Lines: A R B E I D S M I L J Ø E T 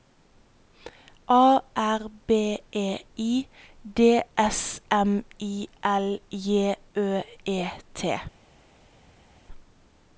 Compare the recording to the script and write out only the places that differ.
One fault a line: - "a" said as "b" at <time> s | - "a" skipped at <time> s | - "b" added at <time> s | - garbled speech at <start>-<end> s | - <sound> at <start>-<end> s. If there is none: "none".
none